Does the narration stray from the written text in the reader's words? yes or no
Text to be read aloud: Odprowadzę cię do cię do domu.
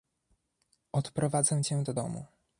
yes